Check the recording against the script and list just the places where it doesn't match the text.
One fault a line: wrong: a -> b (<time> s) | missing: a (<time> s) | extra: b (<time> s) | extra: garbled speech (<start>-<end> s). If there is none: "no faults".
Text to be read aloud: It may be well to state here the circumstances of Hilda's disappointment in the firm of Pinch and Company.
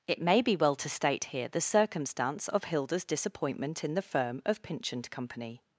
wrong: circumstances -> circumstance (1.6 s)